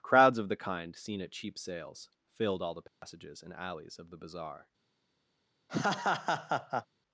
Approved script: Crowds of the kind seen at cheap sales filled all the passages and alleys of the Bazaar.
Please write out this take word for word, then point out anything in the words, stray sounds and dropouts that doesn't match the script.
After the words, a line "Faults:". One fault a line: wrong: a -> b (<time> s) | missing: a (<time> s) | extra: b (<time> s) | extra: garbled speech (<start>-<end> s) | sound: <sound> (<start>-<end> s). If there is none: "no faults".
Crowds of the kind seen at cheap sales filled all the passages and alleys of the Bazaar.
Faults:
sound: dropout (2.9-3.0 s)
sound: laugh (5.7-6.9 s)